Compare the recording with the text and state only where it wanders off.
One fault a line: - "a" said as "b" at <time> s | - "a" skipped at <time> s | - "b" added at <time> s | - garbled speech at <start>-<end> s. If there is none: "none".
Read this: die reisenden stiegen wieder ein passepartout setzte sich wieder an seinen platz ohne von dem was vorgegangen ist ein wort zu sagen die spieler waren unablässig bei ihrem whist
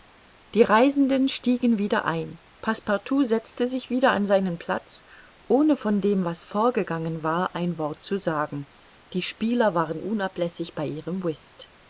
- "ist" said as "war" at 7.2 s